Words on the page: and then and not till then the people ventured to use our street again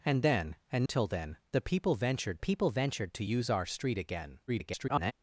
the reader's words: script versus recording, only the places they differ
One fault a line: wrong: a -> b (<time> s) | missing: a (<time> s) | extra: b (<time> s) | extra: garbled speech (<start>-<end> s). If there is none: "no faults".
missing: not (0.8 s)
extra: people ventured (2.4 s)
extra: garbled speech (4.5-5.1 s)